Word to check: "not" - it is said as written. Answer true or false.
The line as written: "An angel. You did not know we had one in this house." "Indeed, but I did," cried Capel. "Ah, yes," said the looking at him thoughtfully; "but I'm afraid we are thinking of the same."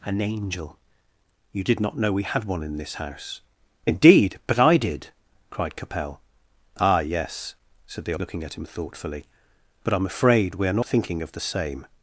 true